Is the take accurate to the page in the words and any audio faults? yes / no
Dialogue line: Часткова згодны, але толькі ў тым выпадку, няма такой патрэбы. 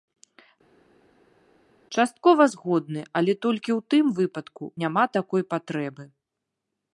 yes